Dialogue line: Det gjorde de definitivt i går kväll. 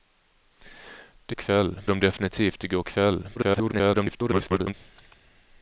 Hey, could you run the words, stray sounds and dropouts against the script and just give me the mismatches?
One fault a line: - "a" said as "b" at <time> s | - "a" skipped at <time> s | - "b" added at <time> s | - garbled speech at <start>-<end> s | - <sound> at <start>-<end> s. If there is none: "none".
- "gjorde" said as "kväll" at 1.3 s
- garbled speech at 3.4-4.7 s